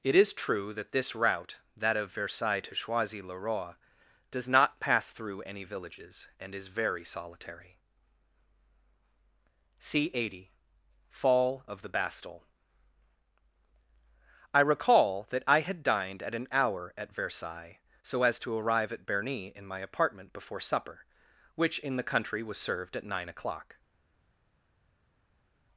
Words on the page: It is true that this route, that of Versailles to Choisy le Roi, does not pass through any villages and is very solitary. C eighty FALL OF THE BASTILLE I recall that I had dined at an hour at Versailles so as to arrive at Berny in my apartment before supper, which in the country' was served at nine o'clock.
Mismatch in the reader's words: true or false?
false